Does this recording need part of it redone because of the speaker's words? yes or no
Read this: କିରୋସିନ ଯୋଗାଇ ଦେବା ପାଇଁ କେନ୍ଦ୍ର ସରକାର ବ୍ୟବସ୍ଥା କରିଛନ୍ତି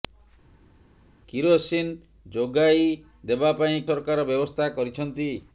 yes